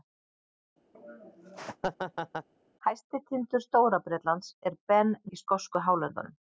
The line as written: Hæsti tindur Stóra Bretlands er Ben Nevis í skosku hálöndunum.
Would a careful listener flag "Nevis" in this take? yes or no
yes